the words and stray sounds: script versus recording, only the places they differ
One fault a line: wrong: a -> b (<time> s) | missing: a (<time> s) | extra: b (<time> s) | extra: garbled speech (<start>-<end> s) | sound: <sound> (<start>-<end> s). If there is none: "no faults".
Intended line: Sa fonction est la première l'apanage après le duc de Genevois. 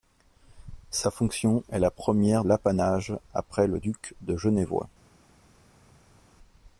no faults